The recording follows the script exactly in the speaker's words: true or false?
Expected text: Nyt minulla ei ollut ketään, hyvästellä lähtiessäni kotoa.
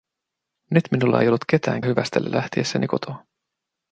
true